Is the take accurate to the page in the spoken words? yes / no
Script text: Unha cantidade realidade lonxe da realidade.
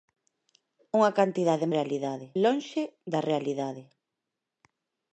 yes